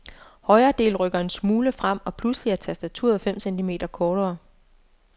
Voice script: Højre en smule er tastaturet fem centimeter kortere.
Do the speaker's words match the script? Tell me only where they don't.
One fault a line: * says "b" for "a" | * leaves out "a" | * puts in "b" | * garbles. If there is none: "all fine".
* puts in "del rykker"
* puts in "frem og pludselig"